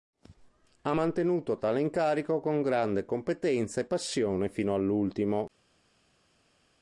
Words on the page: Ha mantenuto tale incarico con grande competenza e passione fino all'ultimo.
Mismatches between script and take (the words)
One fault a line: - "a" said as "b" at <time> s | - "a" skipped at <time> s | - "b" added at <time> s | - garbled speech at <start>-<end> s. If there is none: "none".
none